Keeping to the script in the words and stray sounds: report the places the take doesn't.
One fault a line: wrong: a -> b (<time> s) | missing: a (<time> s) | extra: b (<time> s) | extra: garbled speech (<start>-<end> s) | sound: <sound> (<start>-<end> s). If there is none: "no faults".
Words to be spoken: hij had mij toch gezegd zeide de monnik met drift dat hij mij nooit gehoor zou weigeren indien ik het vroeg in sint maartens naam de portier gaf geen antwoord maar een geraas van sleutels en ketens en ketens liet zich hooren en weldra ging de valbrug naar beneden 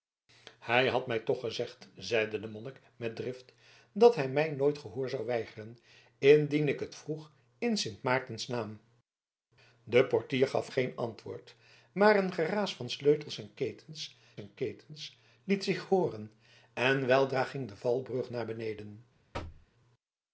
sound: thud (19.3-19.7 s)